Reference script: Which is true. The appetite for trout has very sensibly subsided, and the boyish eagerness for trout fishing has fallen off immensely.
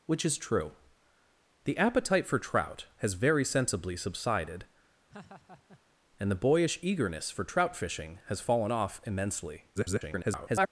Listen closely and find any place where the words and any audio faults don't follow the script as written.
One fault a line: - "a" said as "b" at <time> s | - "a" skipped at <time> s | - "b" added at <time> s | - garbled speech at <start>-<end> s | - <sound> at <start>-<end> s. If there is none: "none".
- laugh at 5.1-5.8 s
- garbled speech at 9.8-10.7 s